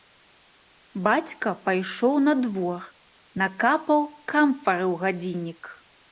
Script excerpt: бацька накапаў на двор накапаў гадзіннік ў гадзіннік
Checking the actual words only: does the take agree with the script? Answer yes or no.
no